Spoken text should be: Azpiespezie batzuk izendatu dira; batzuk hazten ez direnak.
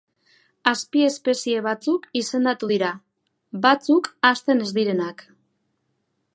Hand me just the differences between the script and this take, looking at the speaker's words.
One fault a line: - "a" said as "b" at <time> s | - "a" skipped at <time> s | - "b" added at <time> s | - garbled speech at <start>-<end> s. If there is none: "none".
none